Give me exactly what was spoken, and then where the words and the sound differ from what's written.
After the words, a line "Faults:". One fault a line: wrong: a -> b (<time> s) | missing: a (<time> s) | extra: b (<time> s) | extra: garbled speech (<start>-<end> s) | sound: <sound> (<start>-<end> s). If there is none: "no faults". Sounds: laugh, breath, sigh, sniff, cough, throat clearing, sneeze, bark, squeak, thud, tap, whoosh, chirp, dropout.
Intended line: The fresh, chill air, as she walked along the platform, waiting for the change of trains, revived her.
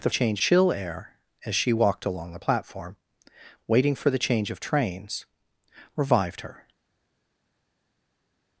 The change, chill air, as she walked along the platform, waiting for the change of trains, revived her.
Faults:
wrong: fresh -> change (0.1 s)